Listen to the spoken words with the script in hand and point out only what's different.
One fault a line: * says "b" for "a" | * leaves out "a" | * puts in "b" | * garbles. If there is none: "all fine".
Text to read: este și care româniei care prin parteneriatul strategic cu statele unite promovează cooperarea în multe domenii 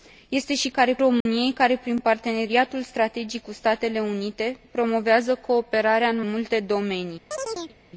all fine